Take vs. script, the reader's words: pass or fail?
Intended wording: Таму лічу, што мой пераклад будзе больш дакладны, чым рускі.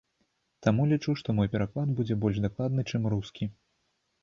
pass